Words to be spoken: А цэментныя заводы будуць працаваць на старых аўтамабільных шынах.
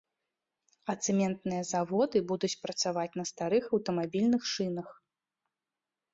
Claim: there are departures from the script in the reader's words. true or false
false